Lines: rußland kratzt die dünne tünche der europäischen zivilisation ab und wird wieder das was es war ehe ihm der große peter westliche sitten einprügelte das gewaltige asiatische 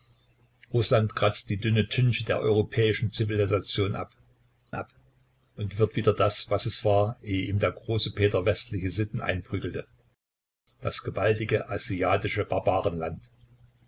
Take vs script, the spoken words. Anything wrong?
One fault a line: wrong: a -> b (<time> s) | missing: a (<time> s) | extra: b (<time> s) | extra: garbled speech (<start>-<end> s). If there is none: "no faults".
extra: ab (4.7 s)